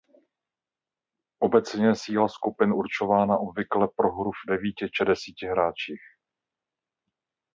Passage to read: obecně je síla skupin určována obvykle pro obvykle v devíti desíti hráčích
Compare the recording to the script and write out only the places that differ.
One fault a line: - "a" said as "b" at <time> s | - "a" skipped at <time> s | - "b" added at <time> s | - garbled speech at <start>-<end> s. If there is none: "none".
- "obvykle" said as "hru" at 4.1 s
- "či" added at 4.9 s